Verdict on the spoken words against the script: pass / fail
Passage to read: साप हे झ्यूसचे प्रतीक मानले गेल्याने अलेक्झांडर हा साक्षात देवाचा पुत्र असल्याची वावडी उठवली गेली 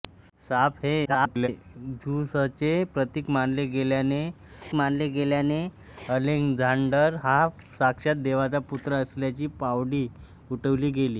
fail